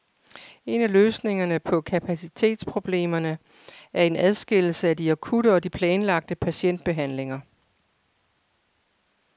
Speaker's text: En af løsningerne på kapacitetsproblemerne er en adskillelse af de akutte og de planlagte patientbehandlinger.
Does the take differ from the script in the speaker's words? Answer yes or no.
no